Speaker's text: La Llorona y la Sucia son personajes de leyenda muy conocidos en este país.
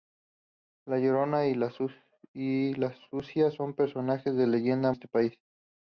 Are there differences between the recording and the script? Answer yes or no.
yes